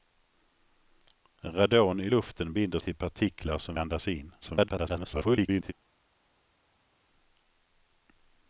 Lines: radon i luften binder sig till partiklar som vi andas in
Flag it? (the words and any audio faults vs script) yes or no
yes